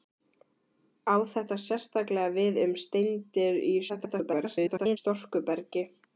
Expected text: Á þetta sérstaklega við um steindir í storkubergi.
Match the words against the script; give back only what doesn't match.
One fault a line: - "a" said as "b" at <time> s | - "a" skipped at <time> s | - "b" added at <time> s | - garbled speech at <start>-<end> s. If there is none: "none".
- garbled speech at 3.9-5.0 s